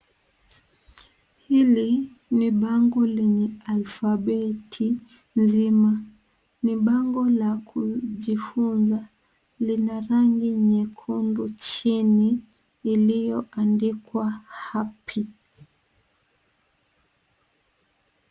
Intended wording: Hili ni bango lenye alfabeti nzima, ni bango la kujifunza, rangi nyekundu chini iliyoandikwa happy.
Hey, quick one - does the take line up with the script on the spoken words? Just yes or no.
no